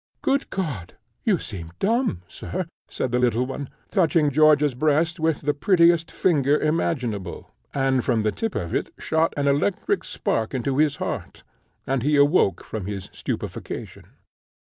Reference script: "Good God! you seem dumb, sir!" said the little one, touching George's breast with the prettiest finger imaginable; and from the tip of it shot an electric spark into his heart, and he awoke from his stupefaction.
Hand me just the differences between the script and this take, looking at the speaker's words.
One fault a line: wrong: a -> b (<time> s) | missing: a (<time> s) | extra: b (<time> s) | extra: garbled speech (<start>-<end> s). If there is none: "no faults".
no faults